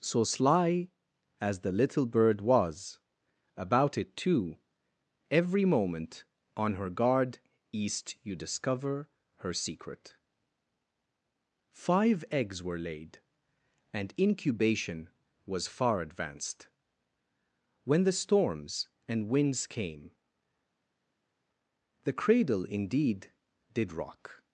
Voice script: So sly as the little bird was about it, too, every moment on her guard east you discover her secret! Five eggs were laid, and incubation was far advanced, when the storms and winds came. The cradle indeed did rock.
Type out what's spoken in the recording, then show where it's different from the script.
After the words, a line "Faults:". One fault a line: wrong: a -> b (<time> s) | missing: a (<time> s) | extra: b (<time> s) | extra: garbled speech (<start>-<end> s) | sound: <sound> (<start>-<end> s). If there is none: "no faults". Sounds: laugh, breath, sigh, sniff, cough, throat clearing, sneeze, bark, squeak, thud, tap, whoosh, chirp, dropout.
So sly as the little bird was about it, too, every moment on her guard east you discover her secret! Five eggs were laid, and incubation was far advanced, when the storms and winds came. The cradle indeed did rock.
Faults:
no faults